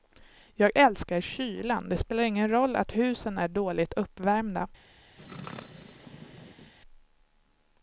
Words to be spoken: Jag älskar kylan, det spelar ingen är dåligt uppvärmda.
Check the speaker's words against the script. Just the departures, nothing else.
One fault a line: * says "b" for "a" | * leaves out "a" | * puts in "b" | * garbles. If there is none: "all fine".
* puts in "roll att husen"